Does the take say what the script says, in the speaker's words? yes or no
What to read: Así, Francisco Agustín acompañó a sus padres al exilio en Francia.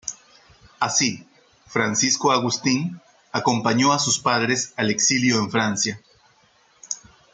yes